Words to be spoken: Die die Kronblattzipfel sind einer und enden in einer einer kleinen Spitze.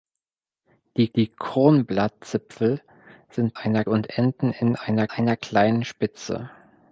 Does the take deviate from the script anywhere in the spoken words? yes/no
no